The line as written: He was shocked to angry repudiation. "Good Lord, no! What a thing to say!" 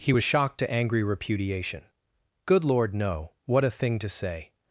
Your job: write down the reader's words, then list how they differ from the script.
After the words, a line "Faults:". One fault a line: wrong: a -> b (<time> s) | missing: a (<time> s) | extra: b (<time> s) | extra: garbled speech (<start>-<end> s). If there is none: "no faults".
He was shocked to angry repudiation. "Good Lord, no! What a thing to say!"
Faults:
no faults